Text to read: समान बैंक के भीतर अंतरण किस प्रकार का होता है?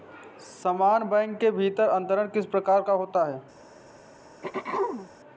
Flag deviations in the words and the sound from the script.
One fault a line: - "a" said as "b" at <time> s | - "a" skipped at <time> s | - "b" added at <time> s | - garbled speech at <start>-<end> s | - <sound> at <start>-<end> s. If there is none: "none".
- throat clearing at 4.4-5.1 s